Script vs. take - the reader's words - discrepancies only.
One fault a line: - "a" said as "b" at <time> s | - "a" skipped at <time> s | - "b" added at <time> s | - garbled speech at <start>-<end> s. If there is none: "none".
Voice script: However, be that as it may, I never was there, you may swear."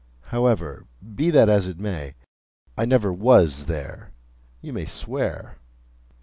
none